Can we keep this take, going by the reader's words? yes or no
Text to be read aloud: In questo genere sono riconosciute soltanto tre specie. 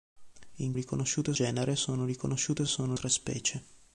no